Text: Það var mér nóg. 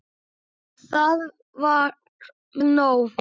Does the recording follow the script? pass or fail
fail